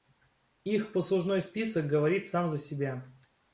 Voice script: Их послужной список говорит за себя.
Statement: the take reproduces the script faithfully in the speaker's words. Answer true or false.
false